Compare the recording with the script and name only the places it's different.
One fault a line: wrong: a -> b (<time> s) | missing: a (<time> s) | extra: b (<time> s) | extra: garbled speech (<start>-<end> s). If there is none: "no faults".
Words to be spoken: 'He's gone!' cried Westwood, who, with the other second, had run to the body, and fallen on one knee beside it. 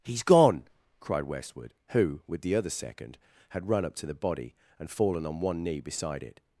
extra: up (3.9 s)